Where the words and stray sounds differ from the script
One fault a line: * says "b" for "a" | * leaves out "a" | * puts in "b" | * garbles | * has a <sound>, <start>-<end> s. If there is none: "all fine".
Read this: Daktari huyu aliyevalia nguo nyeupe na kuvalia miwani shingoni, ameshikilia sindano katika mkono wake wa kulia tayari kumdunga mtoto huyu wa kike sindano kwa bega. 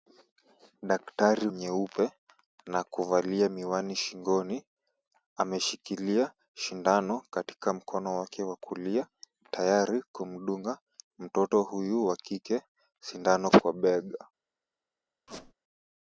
* leaves out "huyu aliyevalia nguo"
* has a squeak, 15.3-15.5 s